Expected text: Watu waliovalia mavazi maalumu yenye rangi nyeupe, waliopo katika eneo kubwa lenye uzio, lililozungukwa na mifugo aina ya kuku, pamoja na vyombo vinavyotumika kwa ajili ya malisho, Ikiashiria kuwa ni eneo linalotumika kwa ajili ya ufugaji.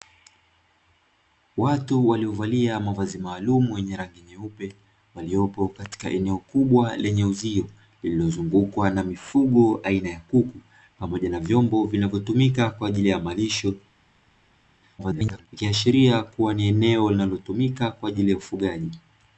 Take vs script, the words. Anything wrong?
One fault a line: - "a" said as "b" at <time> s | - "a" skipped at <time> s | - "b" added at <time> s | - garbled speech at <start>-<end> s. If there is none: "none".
- garbled speech at 15.0-15.5 s